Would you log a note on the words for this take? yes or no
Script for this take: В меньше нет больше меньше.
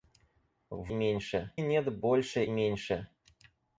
no